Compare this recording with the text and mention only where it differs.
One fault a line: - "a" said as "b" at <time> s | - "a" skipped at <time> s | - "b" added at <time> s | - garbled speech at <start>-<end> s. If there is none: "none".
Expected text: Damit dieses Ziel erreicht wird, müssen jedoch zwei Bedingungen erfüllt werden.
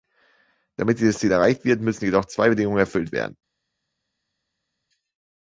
none